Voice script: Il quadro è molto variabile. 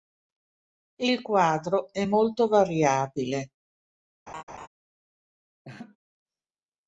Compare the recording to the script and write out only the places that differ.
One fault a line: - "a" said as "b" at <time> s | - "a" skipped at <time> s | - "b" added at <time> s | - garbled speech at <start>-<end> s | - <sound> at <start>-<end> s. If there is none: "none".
- laugh at 4.3-4.7 s
- laugh at 5.6-6.0 s